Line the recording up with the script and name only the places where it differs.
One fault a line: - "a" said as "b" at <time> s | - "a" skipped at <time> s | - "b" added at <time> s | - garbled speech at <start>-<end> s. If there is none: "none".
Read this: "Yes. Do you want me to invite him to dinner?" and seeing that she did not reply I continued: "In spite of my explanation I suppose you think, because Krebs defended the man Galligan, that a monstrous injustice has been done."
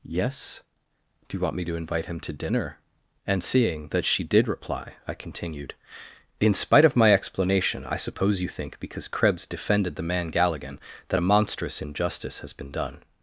- "not" skipped at 4.5 s